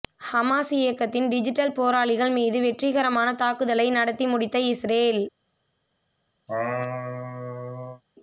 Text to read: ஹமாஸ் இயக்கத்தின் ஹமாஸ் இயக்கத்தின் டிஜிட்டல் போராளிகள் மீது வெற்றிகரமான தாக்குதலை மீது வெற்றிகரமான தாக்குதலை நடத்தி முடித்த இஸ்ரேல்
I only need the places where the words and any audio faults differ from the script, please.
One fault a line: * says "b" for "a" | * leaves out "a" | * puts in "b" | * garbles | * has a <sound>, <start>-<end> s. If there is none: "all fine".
* leaves out "ஹமாஸ் இயக்கத்தின்"
* leaves out "மீது வெற்றிகரமான தாக்குதலை"
* has a laugh, 6.5-8.0 s